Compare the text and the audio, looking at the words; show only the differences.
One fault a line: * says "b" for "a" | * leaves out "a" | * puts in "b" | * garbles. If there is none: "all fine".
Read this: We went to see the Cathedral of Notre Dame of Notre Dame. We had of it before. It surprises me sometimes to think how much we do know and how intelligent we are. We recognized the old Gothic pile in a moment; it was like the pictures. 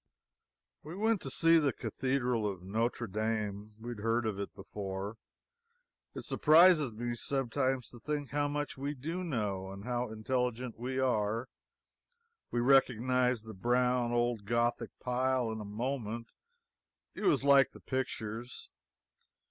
* leaves out "of Notre Dame"
* puts in "heard"
* puts in "brown"